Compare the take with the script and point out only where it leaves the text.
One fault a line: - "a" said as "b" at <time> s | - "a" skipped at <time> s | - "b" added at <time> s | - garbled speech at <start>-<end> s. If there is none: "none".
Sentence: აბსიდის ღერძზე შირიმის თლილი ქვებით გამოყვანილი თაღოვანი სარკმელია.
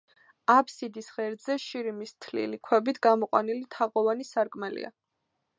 none